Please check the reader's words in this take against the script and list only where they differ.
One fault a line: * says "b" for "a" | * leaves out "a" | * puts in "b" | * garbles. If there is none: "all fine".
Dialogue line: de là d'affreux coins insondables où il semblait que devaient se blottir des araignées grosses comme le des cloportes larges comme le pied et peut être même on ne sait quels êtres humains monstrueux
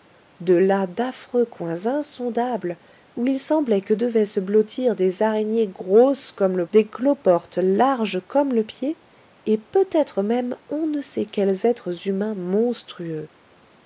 all fine